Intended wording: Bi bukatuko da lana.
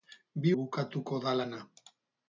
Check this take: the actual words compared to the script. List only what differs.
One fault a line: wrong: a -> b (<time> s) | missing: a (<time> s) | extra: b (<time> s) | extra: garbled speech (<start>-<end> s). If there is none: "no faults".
no faults